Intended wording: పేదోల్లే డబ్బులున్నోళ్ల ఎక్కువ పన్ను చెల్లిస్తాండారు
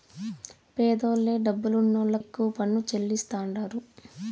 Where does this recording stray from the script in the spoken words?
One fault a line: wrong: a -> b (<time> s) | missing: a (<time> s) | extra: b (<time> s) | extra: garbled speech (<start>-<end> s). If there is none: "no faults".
no faults